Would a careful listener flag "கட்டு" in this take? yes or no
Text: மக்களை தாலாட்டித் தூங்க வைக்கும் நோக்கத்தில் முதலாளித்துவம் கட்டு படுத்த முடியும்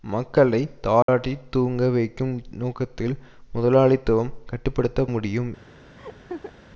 no